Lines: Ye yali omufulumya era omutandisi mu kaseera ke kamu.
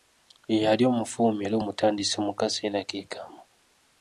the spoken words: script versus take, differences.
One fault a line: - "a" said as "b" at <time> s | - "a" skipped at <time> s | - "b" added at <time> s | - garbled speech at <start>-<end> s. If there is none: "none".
none